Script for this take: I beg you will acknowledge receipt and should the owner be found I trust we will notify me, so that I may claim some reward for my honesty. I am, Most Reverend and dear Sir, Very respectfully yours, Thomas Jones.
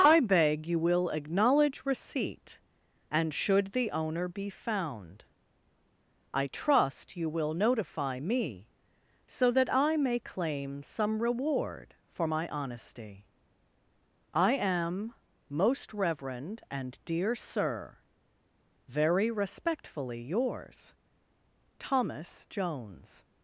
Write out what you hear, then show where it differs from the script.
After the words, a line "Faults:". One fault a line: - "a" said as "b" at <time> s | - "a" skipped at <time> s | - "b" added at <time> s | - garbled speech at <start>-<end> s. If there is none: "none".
I beg you will acknowledge receipt and should the owner be found I trust you will notify me, so that I may claim some reward for my honesty. I am, Most Reverend and dear Sir, Very respectfully yours, Thomas Jones.
Faults:
- "we" said as "you" at 7.2 s